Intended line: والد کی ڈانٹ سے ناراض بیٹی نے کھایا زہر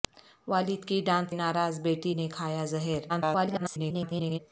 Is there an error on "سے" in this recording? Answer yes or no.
yes